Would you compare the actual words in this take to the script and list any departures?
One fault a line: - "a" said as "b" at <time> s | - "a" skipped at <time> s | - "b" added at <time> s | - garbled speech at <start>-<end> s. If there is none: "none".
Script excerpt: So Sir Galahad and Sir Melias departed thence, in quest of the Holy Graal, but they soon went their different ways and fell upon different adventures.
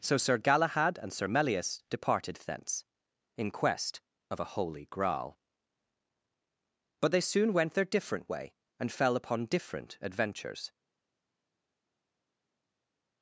- "the" said as "a" at 4.4 s
- "ways" said as "way" at 8.3 s